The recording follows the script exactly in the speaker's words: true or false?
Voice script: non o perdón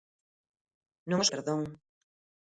true